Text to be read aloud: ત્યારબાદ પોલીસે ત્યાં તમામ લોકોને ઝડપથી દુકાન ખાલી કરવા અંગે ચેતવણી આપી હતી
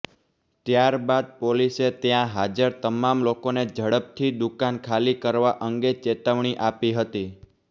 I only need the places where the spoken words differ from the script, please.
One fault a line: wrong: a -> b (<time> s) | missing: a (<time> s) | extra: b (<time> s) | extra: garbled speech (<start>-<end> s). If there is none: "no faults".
extra: હાજર (2.3 s)